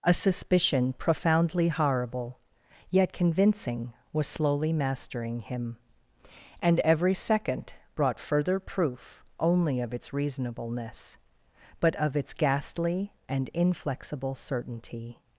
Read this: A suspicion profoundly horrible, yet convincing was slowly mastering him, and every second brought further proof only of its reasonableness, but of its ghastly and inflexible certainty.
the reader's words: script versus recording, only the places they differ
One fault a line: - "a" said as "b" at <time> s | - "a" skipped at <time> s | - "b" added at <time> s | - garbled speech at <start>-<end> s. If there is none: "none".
none